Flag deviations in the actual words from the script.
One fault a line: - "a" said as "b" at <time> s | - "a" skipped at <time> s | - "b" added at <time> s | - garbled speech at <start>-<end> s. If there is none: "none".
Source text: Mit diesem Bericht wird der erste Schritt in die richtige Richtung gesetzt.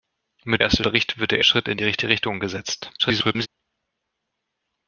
- "diesem" said as "erste" at 0.6 s
- "erste" skipped at 1.4 s
- garbled speech at 3.0-3.5 s